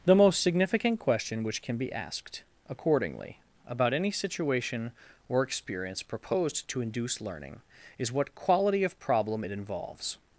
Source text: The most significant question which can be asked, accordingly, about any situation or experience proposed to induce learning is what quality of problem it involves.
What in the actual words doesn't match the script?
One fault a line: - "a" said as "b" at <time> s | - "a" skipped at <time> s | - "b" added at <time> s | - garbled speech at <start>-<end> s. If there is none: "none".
none